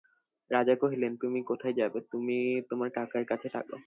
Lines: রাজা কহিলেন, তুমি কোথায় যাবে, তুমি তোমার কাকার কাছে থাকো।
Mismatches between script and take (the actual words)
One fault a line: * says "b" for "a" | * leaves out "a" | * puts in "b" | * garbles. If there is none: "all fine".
all fine